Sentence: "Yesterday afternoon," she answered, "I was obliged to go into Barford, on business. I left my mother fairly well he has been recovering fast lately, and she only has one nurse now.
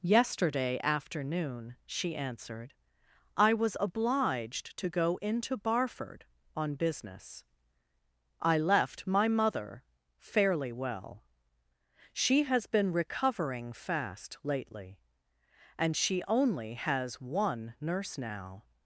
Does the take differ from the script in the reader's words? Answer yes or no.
yes